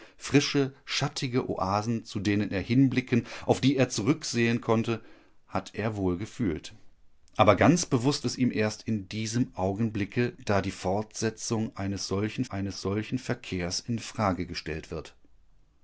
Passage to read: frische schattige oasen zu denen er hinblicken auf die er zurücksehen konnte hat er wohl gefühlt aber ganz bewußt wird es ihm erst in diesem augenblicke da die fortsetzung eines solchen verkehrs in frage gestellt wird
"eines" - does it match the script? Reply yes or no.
yes